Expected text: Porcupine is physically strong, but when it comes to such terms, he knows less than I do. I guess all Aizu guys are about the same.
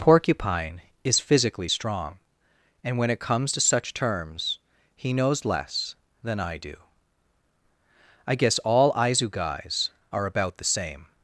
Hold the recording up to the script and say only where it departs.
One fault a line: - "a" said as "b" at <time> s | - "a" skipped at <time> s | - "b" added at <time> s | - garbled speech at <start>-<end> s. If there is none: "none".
- "but" said as "and" at 2.8 s